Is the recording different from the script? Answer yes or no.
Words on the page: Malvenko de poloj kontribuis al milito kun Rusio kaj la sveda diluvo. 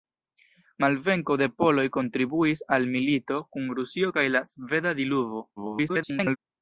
yes